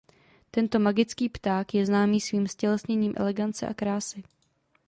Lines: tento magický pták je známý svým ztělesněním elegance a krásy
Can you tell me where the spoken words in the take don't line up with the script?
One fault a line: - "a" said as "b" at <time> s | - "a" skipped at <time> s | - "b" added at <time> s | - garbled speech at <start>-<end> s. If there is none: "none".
none